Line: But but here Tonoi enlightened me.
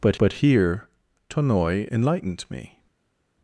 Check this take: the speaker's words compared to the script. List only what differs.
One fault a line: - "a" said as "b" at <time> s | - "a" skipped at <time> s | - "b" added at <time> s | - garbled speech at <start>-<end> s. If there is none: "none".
none